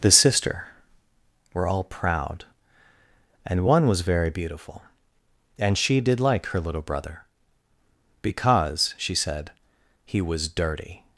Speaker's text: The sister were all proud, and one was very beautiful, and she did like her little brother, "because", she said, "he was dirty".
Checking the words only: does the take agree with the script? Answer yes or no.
yes